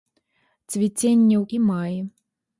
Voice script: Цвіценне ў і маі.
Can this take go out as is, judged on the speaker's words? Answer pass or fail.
pass